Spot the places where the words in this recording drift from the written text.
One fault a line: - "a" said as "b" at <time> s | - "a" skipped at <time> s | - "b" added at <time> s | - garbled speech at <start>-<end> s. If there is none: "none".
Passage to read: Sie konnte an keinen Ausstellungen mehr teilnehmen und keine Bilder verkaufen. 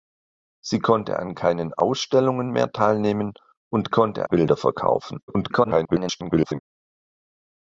- "keine" said as "konnte" at 3.9 s
- garbled speech at 5.3-6.6 s